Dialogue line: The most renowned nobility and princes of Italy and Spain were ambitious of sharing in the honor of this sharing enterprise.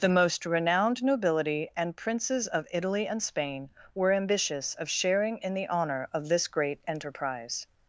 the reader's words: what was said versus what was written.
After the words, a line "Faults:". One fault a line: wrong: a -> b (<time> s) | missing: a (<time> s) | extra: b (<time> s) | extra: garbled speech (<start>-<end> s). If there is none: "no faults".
The most renowned nobility and princes of Italy and Spain were ambitious of sharing in the honor of this great enterprise.
Faults:
wrong: sharing -> great (6.5 s)